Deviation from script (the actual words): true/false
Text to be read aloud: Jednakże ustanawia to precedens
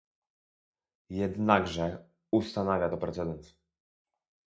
false